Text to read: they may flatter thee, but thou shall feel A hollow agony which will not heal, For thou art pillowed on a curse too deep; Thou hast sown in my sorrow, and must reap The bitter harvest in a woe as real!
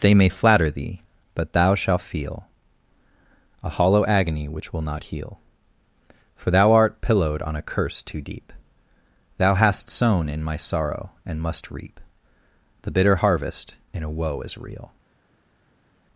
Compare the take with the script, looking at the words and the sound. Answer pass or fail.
fail